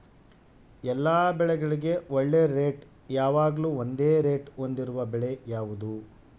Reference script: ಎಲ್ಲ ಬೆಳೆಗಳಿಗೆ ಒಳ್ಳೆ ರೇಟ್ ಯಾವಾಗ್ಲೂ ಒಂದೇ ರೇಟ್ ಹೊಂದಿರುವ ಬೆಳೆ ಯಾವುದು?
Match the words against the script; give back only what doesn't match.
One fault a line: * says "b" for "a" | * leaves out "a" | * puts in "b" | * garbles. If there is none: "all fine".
all fine